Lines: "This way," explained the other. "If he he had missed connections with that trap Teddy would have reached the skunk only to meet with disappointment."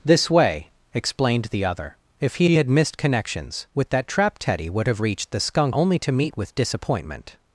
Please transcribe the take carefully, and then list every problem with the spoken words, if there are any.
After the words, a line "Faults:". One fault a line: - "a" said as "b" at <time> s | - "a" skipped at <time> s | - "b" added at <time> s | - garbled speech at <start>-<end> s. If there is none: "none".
"This way," explained the other. "If he he had missed connections with that trap Teddy would have reached the skunk only to meet with disappointment."
Faults:
none